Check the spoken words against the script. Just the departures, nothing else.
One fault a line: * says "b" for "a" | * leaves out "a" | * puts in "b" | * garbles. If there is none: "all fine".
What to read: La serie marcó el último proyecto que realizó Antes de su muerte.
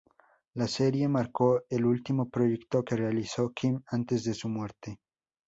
* puts in "Kim"